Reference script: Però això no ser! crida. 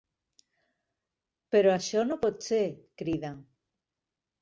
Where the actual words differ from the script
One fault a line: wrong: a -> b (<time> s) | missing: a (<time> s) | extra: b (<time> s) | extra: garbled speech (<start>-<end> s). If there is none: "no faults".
extra: pot (2.3 s)